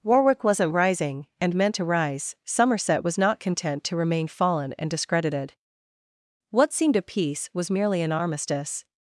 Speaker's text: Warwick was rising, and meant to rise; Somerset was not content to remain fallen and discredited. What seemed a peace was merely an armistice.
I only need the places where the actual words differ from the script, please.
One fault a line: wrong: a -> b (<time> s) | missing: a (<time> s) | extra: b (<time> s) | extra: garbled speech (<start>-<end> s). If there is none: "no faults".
wrong: was -> wasn't (0.4 s)